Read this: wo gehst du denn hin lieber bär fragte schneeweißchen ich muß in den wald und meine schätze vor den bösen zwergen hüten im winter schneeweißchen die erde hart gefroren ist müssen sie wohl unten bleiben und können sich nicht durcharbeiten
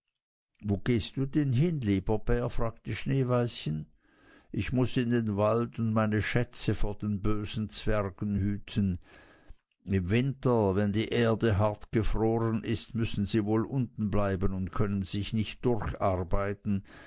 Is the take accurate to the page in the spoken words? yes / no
no